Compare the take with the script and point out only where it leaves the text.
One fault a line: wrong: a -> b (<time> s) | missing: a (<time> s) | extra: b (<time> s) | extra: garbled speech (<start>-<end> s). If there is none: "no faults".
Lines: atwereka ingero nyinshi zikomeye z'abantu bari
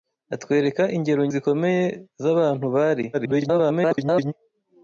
missing: nyinshi (1.2 s)
extra: garbled speech (3.1-4.3 s)